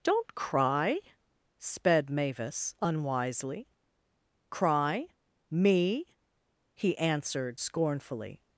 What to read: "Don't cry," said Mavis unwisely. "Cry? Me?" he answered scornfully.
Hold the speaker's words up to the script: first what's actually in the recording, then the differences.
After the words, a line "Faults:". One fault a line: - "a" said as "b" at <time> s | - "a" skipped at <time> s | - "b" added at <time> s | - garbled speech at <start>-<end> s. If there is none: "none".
"Don't cry," sped Mavis unwisely. "Cry? Me?" he answered scornfully.
Faults:
- "said" said as "sped" at 1.6 s